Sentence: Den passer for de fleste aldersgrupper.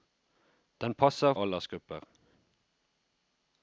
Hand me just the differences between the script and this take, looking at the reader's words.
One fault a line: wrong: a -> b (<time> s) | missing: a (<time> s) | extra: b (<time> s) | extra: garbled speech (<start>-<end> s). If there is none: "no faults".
missing: for de fleste (1.3 s)